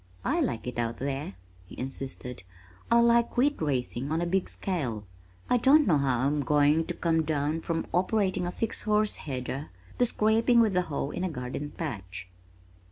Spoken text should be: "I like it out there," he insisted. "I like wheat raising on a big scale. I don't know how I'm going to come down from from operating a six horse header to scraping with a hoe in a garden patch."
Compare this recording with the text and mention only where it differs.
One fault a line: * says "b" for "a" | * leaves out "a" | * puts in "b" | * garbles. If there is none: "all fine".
* leaves out "from"